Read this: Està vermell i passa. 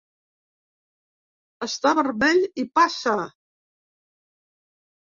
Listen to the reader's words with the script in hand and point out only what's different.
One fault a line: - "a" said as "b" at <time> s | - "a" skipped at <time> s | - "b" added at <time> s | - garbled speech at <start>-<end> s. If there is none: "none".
none